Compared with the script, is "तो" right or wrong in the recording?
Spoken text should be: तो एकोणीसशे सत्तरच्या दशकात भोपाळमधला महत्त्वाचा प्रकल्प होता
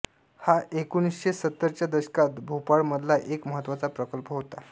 wrong